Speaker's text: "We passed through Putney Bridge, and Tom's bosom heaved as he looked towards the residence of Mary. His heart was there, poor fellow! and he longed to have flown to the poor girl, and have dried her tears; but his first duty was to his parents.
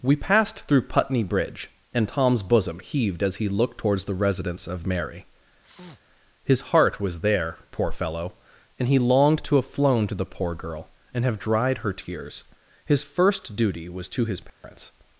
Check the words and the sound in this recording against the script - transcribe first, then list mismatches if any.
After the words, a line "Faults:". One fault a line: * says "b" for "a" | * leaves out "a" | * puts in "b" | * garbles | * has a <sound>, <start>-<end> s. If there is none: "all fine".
"We passed through Putney Bridge, and Tom's bosom heaved as he looked towards the residence of Mary. His heart was there, poor fellow! and he longed to have flown to the poor girl, and have dried her tears; his first duty was to his parents.
Faults:
* has a sneeze, 5.6-6.0 s
* leaves out "but"
* has a dropout, 14.5-14.6 s